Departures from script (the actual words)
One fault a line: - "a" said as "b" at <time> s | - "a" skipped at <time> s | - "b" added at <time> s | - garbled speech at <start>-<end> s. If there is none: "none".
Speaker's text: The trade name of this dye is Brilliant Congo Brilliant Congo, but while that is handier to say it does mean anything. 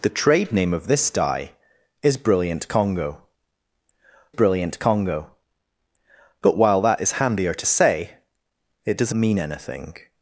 none